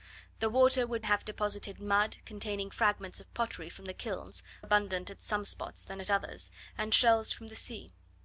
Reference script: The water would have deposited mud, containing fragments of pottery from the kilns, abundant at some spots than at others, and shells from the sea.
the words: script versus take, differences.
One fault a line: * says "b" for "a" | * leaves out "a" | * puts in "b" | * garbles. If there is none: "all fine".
all fine